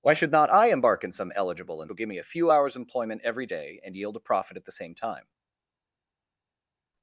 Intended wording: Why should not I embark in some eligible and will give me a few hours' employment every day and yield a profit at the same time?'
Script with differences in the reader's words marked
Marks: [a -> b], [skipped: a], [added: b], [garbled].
Why should not I embark in some eligible and will give me a few hours' employment every day and yield a profit at the same time?'